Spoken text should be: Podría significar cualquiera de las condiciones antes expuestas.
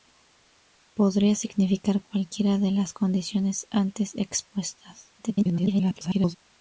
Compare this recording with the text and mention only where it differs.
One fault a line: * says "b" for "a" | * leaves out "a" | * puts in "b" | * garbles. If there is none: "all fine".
* garbles